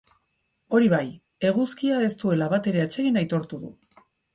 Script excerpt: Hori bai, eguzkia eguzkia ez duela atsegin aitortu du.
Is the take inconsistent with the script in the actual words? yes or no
yes